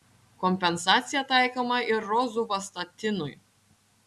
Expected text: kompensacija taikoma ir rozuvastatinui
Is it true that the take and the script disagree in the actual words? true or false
false